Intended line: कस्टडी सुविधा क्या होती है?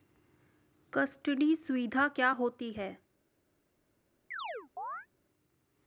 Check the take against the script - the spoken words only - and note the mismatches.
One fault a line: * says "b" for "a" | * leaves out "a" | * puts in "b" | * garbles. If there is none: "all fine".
all fine